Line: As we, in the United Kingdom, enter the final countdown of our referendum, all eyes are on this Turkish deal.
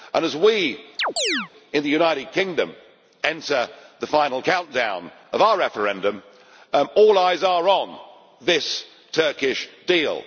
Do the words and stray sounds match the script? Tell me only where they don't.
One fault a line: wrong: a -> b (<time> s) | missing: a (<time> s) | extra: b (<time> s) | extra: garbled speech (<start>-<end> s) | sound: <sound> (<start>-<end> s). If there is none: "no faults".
sound: chirp (1.0-1.5 s)